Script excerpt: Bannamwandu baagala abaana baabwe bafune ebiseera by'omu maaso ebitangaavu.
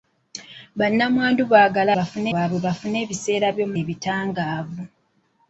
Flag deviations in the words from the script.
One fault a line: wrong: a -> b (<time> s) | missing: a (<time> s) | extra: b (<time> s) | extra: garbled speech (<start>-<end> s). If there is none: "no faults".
wrong: abaana -> bafune (2.0 s)
missing: maaso (3.7 s)